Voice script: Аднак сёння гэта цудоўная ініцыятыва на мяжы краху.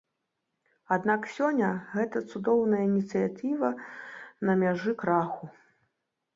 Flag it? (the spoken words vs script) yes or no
no